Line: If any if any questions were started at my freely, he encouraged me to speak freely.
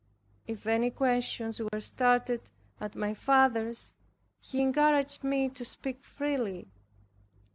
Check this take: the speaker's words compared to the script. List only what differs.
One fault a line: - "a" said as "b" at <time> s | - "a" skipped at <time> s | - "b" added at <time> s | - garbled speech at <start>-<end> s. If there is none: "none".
- "if any" skipped at 0.9 s
- "freely" said as "father's" at 3.2 s